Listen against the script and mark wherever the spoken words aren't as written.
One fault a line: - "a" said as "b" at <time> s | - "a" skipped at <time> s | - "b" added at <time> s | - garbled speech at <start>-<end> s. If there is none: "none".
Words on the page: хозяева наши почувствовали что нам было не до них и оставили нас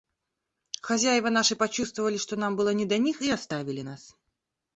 none